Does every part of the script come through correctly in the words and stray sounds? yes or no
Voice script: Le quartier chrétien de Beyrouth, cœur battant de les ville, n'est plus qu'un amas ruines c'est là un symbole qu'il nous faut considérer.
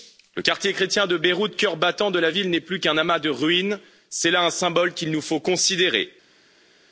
no